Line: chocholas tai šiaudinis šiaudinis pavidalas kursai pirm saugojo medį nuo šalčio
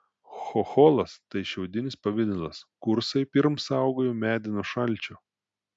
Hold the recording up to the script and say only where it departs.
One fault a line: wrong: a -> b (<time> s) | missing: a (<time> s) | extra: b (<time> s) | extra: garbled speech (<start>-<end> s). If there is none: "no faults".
missing: šiaudinis (2.0 s)